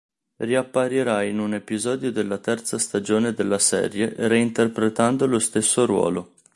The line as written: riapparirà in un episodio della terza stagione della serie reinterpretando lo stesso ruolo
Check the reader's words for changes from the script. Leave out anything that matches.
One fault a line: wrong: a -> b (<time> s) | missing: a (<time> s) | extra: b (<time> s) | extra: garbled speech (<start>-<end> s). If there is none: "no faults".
no faults